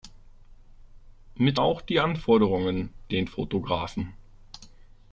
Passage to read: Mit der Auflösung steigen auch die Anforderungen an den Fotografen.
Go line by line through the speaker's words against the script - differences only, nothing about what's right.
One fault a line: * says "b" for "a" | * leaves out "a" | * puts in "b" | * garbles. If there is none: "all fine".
* leaves out "der Auflösung steigen"
* leaves out "an"